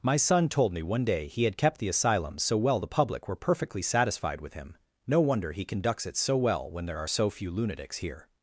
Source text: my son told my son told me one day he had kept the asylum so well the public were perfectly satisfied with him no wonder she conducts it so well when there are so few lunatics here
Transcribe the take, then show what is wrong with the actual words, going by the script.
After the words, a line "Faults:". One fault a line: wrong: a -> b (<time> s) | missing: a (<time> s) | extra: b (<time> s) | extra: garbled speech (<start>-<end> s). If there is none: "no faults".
my son told me one day he had kept the asylum so well the public were perfectly satisfied with him no wonder he conducts it so well when there are so few lunatics here
Faults:
missing: my son told (0.7 s)
wrong: she -> he (5.5 s)